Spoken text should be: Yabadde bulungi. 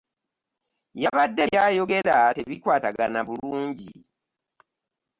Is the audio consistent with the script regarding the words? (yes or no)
no